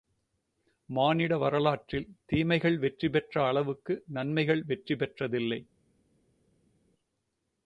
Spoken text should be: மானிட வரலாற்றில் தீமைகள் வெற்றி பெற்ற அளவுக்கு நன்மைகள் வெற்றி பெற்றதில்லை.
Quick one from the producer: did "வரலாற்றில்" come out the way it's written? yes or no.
yes